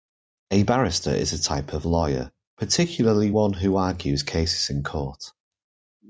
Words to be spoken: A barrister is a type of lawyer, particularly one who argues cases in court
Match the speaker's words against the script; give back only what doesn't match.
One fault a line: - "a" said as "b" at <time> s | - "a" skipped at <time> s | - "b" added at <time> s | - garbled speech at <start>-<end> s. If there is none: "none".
none